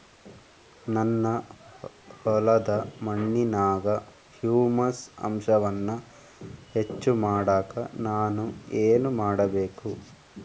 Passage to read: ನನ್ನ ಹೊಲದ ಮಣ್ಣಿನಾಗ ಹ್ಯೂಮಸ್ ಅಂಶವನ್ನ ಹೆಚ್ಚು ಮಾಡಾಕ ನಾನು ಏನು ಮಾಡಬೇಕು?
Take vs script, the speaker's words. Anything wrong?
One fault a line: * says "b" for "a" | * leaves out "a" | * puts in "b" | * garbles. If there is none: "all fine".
all fine